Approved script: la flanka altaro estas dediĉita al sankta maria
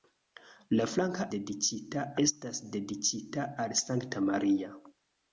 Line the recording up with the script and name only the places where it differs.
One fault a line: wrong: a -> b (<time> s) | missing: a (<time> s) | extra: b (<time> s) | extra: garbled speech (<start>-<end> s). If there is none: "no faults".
wrong: altaro -> dediĉita (1.3 s)